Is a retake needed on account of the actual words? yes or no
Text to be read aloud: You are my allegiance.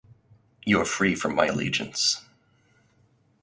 yes